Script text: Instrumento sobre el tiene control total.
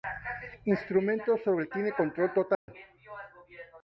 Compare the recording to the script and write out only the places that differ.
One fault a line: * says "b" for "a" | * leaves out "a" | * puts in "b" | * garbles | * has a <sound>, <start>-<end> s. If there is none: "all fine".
* has a dropout, 2.5-2.7 s